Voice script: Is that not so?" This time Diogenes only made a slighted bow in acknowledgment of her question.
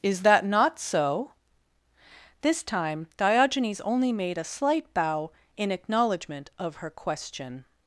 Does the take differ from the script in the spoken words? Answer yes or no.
yes